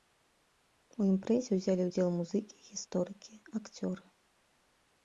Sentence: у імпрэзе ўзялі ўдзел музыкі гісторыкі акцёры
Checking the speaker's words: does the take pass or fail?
pass